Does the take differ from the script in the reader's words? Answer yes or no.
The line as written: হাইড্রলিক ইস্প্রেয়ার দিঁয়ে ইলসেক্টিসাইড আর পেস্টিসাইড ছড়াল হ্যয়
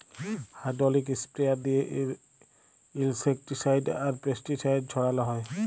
no